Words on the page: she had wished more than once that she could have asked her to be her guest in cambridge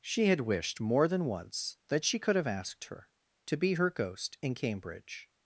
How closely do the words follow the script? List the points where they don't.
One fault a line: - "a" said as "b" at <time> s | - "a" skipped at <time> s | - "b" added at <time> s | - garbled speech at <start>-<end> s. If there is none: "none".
- "guest" said as "ghost" at 3.9 s